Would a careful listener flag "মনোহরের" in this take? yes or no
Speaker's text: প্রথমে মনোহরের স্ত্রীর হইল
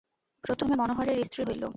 no